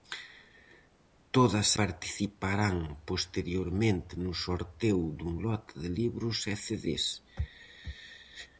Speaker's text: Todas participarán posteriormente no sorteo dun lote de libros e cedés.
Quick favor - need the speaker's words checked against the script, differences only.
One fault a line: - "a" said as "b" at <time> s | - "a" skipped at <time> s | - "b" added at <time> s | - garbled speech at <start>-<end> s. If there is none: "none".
none